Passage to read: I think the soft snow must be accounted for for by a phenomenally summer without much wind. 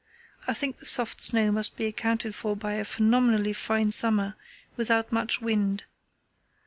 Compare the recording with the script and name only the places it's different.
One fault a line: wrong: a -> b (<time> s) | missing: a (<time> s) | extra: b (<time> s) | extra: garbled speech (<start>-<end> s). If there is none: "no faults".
missing: for (2.6 s)
extra: fine (3.5 s)